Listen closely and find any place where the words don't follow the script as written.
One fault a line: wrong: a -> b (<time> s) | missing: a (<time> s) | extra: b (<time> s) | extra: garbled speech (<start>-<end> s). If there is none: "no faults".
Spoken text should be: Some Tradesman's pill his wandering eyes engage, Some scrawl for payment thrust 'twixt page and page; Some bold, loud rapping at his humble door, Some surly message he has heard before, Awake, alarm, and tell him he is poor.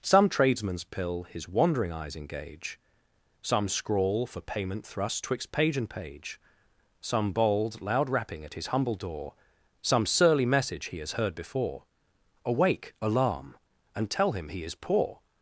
no faults